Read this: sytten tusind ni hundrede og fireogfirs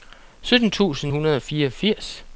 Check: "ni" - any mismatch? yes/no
yes